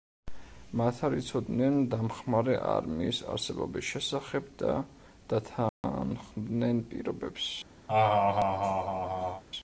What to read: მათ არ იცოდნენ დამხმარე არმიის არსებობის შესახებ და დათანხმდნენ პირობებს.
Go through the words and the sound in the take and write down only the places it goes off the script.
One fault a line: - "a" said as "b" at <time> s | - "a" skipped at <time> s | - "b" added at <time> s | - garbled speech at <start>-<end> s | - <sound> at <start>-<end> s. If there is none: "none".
- dropout at 5.7-5.8 s
- laugh at 7.9-9.4 s